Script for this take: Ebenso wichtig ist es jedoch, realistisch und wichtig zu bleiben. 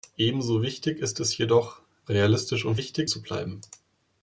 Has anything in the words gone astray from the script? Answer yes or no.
no